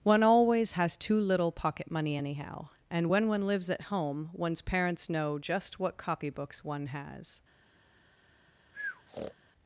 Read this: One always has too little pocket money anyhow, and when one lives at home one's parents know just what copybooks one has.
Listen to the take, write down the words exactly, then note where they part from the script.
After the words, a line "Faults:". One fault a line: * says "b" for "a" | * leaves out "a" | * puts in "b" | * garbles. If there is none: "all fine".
One always has too little pocket money anyhow, and when one lives at home one's parents know just what copybooks one has.
Faults:
all fine